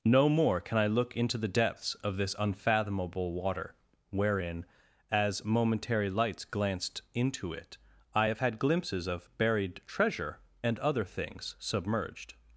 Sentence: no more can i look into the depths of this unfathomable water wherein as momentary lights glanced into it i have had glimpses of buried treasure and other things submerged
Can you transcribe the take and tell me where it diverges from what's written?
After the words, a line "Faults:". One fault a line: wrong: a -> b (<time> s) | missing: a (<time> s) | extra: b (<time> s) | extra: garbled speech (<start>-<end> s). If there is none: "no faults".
no more can i look into the depths of this unfathomable water wherein as momentary lights glanced into it i have had glimpses of buried treasure and other things submerged
Faults:
no faults